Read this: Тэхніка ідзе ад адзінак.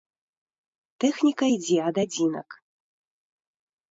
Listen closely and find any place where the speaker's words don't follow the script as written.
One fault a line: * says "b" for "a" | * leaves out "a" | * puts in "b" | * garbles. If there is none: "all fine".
all fine